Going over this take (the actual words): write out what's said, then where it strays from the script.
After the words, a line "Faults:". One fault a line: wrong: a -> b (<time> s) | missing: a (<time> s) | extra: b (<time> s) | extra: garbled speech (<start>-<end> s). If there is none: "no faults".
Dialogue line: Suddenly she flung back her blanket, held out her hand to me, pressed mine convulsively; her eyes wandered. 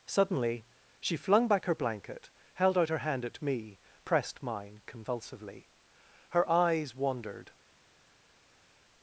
Suddenly she flung back her blanket, held out her hand at me, pressed mine convulsively; her eyes wandered.
Faults:
wrong: to -> at (3.2 s)